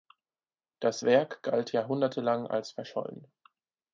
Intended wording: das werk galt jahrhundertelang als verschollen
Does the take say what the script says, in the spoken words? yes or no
yes